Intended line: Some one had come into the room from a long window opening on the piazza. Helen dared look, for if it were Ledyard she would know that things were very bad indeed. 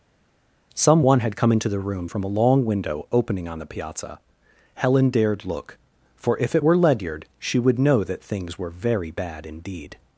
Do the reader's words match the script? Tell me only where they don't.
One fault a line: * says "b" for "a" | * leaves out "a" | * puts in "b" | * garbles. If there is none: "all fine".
all fine